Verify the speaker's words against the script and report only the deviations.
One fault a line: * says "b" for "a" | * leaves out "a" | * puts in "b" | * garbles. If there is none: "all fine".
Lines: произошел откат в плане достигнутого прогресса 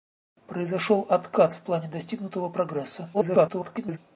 * garbles